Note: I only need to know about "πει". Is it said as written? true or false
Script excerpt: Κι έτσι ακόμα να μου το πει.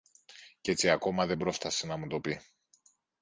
true